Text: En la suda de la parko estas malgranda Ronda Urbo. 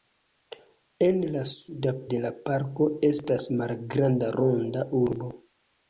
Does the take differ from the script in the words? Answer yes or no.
no